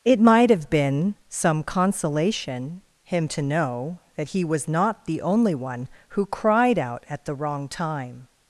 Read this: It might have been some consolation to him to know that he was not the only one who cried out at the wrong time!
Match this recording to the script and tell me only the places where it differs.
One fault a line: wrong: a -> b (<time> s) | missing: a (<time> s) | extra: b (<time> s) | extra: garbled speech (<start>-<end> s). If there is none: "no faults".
missing: to (2.8 s)